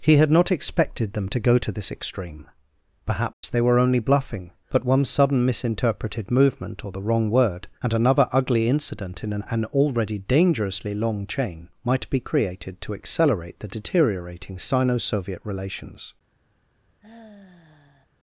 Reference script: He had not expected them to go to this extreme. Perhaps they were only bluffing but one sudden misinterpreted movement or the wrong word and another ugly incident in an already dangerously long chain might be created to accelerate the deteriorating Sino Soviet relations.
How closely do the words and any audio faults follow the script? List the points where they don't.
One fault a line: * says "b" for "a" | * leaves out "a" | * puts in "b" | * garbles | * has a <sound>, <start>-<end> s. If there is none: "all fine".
* has a dropout, 3.3-3.4 s
* puts in "an"
* has a sigh, 17.0-18.1 s